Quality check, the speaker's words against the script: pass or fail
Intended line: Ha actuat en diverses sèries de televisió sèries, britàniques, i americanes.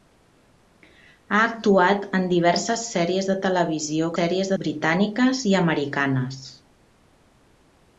pass